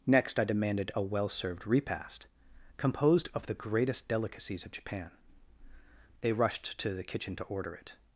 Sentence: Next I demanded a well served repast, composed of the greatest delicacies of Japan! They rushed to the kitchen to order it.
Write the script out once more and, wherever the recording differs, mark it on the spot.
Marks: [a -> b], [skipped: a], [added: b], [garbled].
Next I demanded a well served repast, composed of the greatest delicacies of Japan! They rushed to the kitchen to order it.